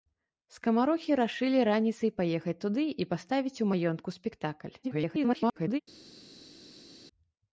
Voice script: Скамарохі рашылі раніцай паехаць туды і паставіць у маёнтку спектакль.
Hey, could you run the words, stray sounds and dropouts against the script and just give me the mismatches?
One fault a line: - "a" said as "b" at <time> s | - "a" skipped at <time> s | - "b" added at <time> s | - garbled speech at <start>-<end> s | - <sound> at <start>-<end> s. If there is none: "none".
- garbled speech at 4.8-5.8 s